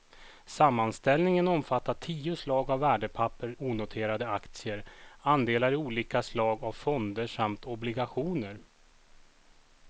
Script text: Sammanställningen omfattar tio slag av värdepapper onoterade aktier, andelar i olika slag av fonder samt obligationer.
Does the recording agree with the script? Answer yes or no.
yes